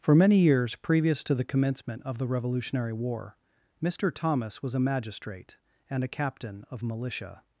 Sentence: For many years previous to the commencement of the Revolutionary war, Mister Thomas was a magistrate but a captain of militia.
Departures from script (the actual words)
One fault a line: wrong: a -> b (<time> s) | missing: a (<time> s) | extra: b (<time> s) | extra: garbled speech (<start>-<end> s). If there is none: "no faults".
wrong: but -> and (5.9 s)